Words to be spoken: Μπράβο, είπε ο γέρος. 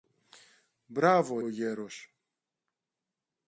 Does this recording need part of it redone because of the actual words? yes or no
yes